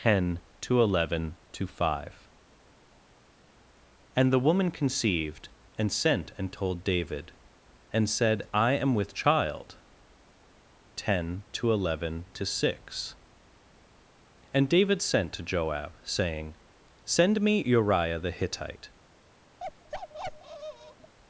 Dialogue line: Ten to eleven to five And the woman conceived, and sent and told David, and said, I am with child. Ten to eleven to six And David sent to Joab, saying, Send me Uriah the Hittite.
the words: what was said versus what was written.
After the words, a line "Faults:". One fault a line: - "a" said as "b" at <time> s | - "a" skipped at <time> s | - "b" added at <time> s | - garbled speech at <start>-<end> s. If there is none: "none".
Ten to eleven to five And the woman conceived, and sent and told David, and said, I am with child. Ten to eleven to six And David sent to Joab, saying, Send me Uriah the Hittite.
Faults:
none